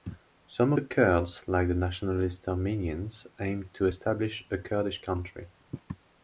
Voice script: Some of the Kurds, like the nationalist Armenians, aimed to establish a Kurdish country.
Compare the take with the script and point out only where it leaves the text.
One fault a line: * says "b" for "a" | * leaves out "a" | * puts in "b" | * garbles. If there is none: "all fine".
* leaves out "of"